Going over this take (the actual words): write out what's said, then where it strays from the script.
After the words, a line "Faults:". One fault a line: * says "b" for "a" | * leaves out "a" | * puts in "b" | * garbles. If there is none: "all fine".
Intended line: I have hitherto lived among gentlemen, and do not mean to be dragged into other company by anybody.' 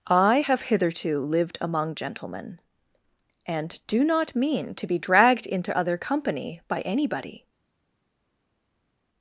I have hitherto lived among gentlemen, and do not mean to be dragged into other company by anybody.'
Faults:
all fine